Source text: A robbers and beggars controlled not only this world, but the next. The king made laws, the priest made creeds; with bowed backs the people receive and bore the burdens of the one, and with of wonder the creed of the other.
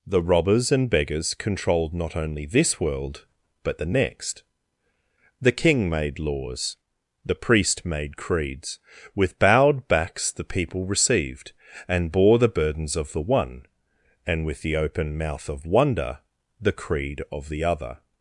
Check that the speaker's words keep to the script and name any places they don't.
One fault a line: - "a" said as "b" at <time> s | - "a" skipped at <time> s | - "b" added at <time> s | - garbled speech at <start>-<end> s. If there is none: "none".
- "A" said as "The" at 0.1 s
- "receive" said as "received" at 10.8 s
- "the open mouth" added at 14.6 s